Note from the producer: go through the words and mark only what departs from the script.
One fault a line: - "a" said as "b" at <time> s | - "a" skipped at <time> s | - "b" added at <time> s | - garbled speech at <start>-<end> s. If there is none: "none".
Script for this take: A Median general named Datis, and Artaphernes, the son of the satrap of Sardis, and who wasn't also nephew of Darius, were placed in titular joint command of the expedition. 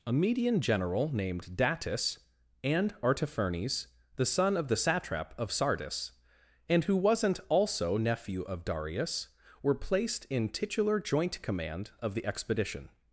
none